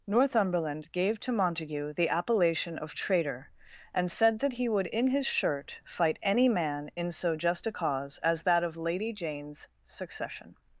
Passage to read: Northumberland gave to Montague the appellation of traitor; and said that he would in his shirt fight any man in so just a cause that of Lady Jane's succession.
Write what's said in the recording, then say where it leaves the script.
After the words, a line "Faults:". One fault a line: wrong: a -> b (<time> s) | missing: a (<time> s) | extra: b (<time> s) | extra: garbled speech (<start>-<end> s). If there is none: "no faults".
Northumberland gave to Montague the appellation of traitor; and said that he would in his shirt fight any man in so just a cause as that of Lady Jane's succession.
Faults:
extra: as (8.2 s)